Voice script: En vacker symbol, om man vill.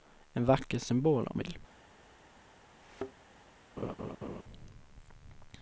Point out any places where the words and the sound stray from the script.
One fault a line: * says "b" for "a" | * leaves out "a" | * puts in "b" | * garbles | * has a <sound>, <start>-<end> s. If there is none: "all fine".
* leaves out "man"
* has a thud, 2.8-3.1 s
* has a laugh, 3.8-4.4 s